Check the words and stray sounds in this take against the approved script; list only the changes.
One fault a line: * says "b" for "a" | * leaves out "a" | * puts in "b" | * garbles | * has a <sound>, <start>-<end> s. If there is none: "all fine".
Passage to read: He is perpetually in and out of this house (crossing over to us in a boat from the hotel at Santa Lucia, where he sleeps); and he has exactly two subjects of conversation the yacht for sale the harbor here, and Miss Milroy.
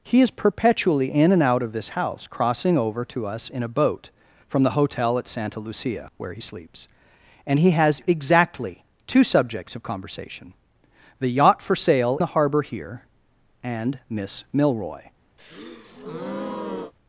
* has a breath, 15.4-16.9 s